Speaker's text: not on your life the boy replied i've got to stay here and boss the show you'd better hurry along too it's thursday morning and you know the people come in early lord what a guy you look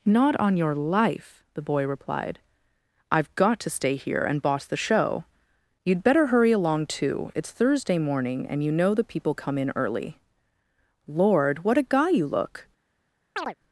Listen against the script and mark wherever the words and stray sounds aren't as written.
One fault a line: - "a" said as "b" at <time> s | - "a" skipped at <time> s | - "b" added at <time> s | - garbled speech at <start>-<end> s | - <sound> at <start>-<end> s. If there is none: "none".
- chirp at 13.4-13.6 s